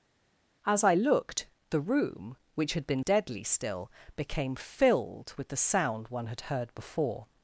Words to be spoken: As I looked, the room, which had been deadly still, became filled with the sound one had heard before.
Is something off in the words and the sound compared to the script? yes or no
no